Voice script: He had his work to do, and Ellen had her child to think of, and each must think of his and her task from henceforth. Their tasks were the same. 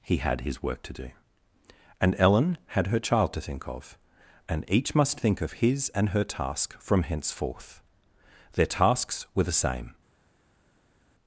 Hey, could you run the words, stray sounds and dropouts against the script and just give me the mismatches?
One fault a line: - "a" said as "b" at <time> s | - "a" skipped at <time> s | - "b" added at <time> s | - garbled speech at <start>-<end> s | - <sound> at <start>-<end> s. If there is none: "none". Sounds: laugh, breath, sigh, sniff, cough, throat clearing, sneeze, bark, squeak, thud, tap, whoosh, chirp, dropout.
none